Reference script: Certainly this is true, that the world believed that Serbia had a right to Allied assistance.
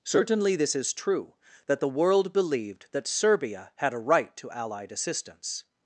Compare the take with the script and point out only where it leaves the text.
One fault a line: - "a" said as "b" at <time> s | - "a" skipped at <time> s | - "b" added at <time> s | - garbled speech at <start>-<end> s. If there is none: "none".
none